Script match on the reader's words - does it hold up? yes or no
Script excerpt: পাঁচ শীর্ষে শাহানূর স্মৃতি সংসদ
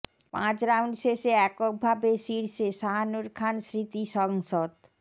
no